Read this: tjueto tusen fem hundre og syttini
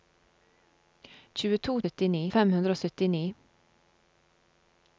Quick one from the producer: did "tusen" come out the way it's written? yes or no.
no